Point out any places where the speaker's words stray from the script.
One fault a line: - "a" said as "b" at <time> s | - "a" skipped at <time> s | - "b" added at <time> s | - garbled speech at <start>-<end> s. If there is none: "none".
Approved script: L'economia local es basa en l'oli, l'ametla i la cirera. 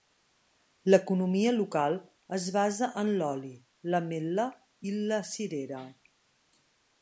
none